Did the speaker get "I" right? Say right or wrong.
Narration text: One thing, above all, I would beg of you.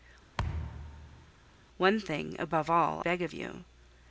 wrong